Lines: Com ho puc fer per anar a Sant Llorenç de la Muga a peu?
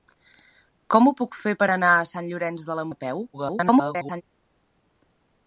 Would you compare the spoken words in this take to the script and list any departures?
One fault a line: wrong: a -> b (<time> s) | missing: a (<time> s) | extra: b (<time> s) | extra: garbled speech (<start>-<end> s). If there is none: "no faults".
missing: Muga (2.8 s)
extra: garbled speech (3.3-4.2 s)